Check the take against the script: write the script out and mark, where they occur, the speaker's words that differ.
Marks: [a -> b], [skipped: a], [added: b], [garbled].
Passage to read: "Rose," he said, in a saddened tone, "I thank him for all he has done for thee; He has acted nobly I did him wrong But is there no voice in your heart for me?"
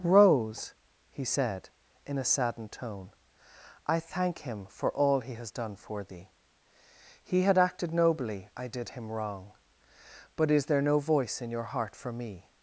"Rose," he said, in a saddened tone, "I thank him for all he has done for thee; He [has -> had] acted nobly I did him wrong But is there no voice in your heart for me?"